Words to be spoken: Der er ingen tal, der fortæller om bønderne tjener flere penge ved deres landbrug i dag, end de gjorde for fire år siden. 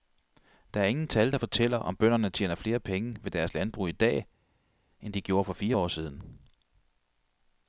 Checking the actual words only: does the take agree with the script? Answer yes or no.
yes